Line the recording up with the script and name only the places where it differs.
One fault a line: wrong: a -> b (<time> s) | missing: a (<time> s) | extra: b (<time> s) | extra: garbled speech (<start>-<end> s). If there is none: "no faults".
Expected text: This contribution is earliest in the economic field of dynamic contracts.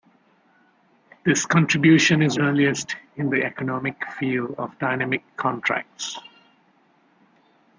no faults